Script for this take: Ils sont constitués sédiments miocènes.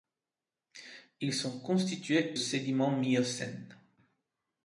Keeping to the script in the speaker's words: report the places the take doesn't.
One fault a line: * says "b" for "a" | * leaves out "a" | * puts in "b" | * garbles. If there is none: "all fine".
all fine